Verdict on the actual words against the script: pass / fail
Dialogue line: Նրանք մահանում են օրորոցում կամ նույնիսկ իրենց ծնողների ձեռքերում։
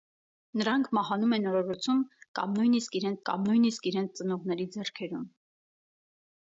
fail